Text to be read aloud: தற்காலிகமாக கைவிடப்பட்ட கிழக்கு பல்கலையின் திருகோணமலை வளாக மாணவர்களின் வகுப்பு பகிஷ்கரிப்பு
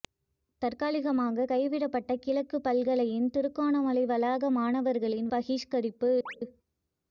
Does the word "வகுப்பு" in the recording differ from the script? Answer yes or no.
yes